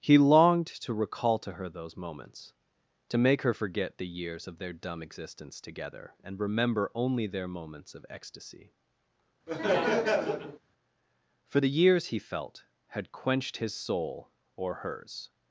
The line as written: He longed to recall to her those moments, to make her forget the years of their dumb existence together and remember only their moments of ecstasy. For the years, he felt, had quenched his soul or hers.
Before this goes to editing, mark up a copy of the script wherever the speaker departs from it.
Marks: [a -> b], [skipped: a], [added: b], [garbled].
He longed to recall to her those moments, to make her forget the years of their dumb existence together and remember only their moments of ecstasy. For the years, he felt, had quenched his soul or hers.